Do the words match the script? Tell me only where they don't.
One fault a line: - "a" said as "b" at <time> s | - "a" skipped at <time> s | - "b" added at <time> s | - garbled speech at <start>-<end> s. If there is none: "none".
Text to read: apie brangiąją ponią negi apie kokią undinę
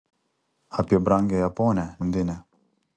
- "negi apie kokią" skipped at 1.9 s